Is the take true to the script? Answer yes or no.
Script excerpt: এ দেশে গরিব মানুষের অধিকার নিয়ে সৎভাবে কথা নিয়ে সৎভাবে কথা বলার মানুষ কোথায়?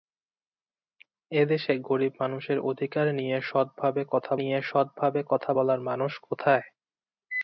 yes